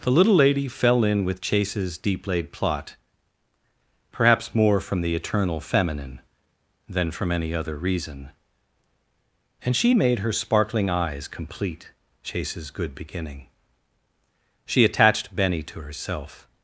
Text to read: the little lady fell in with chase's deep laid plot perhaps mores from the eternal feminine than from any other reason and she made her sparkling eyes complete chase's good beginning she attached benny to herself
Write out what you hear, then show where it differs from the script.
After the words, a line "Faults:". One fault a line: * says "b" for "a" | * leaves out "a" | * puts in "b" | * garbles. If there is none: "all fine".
the little lady fell in with chase's deep laid plot perhaps more from the eternal feminine than from any other reason and she made her sparkling eyes complete chase's good beginning she attached benny to herself
Faults:
* says "more" for "mores"